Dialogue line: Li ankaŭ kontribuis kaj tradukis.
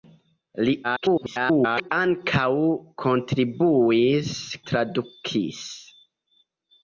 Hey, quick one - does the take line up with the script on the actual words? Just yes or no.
no